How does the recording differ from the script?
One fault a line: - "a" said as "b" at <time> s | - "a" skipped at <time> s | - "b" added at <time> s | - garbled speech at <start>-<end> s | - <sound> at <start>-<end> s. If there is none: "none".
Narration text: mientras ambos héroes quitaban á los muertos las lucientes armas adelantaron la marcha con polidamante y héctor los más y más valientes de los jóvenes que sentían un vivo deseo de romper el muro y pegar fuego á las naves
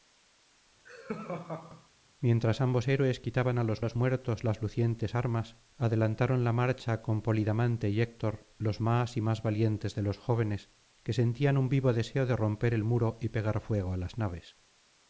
- laugh at 0.8-1.9 s
- "los" added at 3.8 s